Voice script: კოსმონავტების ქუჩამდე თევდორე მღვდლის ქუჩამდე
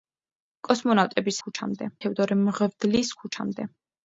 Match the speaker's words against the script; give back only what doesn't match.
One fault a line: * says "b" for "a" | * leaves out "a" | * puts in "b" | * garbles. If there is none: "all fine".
all fine